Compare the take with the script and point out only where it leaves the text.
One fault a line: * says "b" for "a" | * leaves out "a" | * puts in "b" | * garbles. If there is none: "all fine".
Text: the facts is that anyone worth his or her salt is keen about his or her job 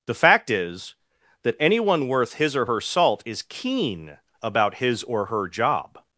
* says "fact" for "facts"